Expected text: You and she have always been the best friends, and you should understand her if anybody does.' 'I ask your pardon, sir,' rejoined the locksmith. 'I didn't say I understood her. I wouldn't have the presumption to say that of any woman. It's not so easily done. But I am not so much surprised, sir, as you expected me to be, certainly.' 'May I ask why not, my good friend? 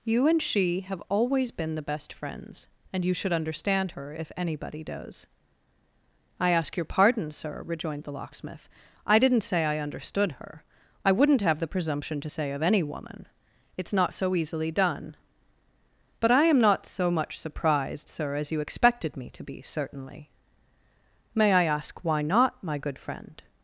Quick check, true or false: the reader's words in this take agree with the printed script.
false